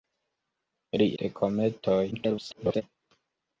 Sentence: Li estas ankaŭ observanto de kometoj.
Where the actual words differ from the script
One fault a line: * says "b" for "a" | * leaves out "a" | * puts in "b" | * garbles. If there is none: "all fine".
* leaves out "estas ankaŭ observanto"
* garbles